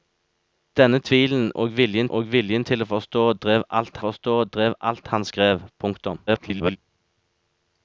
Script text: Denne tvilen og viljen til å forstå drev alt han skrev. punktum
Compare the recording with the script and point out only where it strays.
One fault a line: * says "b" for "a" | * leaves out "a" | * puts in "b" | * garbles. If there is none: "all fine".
* puts in "og viljen"
* puts in "forstå drev alt"
* garbles